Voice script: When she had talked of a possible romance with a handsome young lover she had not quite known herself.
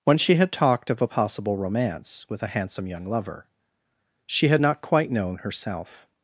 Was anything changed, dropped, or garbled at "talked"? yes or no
no